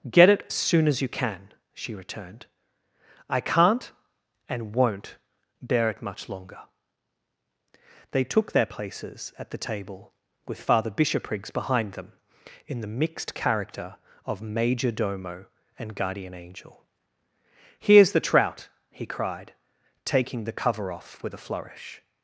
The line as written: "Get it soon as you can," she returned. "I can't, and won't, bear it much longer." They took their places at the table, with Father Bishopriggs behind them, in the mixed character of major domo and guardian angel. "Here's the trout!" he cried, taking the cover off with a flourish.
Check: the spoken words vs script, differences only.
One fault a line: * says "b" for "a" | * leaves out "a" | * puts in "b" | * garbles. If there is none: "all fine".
all fine